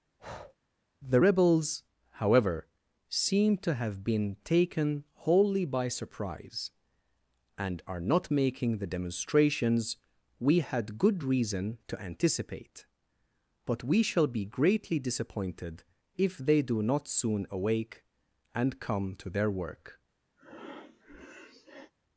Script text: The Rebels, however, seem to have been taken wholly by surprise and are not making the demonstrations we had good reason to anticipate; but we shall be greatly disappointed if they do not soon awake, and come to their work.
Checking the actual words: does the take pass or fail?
pass